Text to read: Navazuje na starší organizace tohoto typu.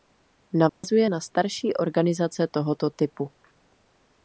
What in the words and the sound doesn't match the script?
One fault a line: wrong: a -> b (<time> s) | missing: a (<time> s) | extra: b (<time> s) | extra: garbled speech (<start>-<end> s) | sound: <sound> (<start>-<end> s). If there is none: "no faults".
sound: dropout (0.7-0.8 s)